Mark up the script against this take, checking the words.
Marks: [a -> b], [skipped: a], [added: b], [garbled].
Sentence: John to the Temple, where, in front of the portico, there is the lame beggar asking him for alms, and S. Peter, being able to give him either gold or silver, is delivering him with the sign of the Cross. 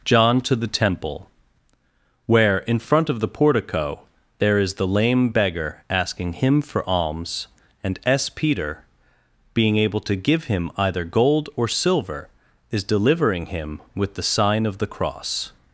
John to the Temple, where, in front of the portico, there is the lame beggar asking him for alms, and S. Peter, being able to give him either gold or silver, is delivering him with the sign of the Cross.